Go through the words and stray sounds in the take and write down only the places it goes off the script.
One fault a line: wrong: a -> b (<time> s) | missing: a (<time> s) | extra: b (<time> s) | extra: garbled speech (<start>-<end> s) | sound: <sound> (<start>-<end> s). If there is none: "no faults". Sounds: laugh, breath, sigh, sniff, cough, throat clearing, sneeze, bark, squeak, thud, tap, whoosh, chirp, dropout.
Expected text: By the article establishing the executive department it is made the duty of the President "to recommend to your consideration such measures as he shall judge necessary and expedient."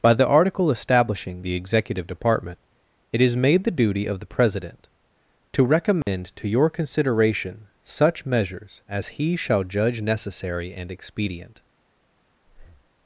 sound: dropout (6.0-6.1 s)
sound: breath (12.4-12.9 s)